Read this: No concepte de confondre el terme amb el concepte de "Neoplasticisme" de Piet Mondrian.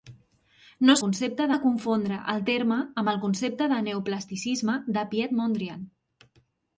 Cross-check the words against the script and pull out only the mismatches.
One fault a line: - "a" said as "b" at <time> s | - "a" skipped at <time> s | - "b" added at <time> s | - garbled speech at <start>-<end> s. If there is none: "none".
none